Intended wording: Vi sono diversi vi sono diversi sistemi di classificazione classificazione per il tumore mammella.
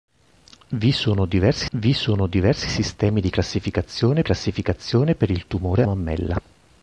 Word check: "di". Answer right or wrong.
right